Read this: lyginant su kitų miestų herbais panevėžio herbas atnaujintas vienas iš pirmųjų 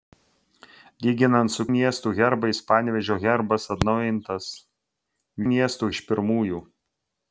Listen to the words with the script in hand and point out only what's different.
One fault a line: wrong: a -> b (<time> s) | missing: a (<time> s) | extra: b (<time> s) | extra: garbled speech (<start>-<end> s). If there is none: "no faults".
missing: kitų (1.6 s)
wrong: vienas -> miestų (5.5 s)